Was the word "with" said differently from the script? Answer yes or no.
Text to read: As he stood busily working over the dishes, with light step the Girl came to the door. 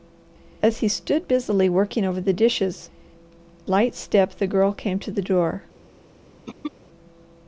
yes